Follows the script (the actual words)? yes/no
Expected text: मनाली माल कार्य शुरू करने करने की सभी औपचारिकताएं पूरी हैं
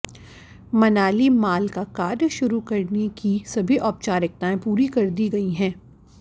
no